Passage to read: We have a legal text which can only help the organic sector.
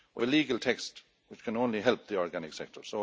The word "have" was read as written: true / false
false